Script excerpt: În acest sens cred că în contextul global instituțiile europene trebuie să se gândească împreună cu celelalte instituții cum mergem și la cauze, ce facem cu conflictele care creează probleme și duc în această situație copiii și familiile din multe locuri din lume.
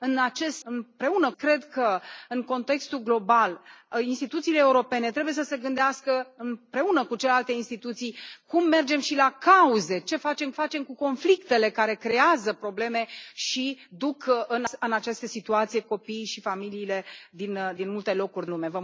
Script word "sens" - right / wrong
wrong